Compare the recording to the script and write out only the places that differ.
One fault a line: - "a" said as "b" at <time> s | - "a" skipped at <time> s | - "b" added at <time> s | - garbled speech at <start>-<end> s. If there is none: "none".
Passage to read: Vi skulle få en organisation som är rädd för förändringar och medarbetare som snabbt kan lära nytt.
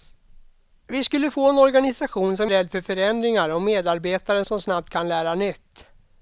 none